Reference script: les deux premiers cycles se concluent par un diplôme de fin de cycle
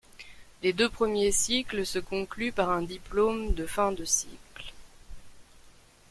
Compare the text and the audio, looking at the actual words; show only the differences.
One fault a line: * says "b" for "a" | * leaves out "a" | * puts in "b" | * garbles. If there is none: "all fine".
all fine